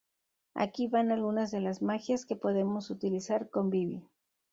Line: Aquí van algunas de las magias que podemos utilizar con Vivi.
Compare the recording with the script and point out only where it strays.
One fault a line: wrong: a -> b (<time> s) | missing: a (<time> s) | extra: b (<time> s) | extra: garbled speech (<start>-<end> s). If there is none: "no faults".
no faults